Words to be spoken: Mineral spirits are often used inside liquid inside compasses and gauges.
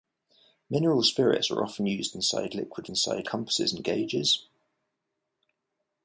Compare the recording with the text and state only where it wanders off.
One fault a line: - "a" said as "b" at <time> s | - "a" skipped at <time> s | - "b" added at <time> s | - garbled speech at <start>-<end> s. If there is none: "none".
none